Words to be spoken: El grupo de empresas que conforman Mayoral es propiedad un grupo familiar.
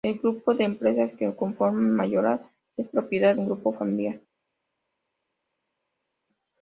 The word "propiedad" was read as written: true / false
true